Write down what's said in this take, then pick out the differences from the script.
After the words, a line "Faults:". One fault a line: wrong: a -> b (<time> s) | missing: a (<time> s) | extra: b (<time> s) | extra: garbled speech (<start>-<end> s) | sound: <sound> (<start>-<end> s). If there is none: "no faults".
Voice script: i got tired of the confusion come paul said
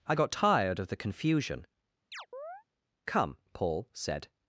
i got tired of the confusion come paul said
Faults:
sound: chirp (2.1-2.6 s)